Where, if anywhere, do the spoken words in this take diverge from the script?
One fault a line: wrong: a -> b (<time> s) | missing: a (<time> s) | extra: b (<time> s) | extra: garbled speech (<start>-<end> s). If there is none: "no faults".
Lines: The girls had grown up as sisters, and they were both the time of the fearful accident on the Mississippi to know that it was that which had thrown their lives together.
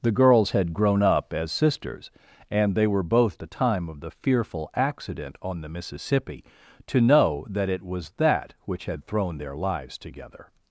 no faults